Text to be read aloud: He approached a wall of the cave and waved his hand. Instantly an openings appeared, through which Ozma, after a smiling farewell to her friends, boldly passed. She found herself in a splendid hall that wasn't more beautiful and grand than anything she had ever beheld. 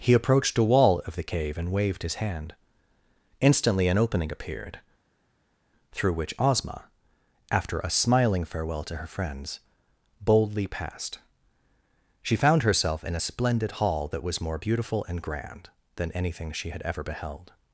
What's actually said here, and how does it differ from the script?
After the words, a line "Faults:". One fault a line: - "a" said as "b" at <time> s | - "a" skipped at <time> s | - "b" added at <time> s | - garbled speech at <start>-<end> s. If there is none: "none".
He approached a wall of the cave and waved his hand. Instantly an opening appeared, through which Ozma, after a smiling farewell to her friends, boldly passed. She found herself in a splendid hall that was more beautiful and grand than anything she had ever beheld.
Faults:
- "openings" said as "opening" at 4.0 s
- "wasn't" said as "was" at 14.2 s